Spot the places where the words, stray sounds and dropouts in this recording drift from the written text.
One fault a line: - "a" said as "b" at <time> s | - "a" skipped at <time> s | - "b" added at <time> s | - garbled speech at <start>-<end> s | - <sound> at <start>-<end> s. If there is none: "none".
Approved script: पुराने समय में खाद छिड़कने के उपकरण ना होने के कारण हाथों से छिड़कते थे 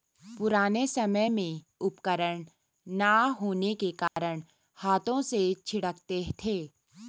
- "खाद छिड़कने के" skipped at 1.6 s
- dropout at 4.1-4.2 s